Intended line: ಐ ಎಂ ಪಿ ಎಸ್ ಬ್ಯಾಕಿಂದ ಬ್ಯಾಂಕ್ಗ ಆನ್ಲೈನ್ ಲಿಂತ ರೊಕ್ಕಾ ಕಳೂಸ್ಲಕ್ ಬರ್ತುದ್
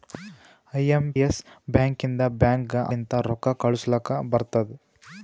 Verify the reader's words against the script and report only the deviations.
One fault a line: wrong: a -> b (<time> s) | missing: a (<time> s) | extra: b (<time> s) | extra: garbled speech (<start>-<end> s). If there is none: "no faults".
missing: ಪಿ (1.1 s)
missing: ಆನ್ಲೈನ್ (2.8 s)